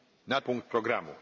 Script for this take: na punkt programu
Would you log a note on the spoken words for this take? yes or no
no